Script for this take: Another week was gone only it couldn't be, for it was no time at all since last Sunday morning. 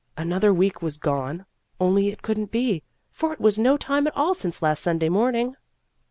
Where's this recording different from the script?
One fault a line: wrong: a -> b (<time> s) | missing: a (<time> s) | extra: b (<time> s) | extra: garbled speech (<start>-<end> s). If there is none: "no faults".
no faults